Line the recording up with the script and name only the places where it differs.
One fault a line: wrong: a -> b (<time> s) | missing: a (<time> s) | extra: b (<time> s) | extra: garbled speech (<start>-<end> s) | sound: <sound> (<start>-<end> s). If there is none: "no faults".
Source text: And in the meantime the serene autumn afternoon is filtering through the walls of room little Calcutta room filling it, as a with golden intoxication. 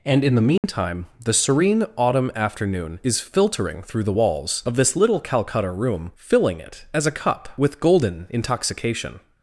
sound: dropout (0.6-0.6 s)
wrong: room -> this (4.8 s)
extra: cup (7.1 s)